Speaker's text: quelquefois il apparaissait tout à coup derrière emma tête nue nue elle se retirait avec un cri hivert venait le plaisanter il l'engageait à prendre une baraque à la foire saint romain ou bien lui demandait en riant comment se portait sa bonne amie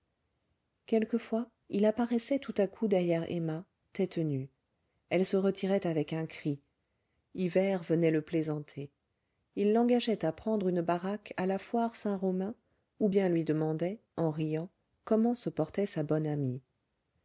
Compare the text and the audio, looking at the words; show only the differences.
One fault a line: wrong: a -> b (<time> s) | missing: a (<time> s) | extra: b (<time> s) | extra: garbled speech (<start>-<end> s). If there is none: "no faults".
missing: nue (4.5 s)